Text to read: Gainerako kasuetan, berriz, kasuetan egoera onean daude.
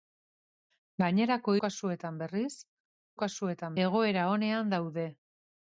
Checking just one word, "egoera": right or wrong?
right